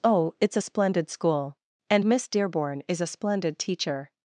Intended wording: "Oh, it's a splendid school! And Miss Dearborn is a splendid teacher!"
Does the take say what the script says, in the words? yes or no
yes